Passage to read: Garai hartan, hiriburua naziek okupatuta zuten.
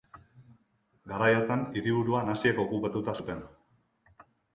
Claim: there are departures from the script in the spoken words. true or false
false